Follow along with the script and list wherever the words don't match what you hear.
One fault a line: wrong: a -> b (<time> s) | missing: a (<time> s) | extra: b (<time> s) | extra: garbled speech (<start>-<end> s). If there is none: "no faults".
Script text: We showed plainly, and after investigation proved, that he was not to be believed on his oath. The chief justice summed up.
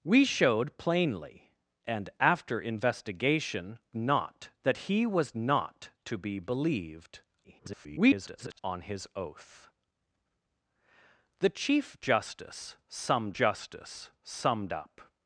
wrong: proved -> not (3.9 s)
extra: garbled speech (7.4-8.6 s)
extra: justice summed (13.3 s)